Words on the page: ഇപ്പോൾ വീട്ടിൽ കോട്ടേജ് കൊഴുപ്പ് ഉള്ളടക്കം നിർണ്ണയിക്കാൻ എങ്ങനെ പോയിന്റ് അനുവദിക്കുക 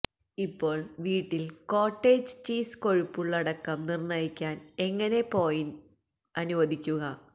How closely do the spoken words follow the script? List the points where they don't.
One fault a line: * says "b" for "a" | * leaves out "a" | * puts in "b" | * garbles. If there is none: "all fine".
* puts in "ചീസ്"